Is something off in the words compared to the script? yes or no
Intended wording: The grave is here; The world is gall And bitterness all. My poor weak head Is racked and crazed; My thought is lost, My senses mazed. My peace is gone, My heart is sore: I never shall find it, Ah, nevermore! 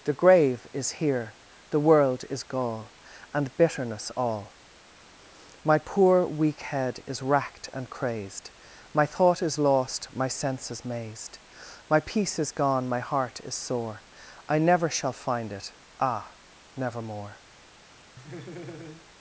no